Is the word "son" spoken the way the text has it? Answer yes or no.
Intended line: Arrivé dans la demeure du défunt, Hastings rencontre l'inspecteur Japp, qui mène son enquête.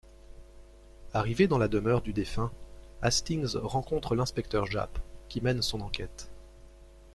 yes